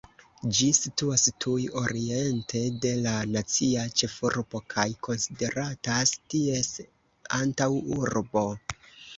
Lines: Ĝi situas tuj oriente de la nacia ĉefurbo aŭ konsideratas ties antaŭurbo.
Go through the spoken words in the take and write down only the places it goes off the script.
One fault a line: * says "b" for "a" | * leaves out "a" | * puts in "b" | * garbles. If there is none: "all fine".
* says "kaj" for "aŭ"